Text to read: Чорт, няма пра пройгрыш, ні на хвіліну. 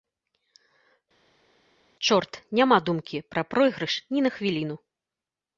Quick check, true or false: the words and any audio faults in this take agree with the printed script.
false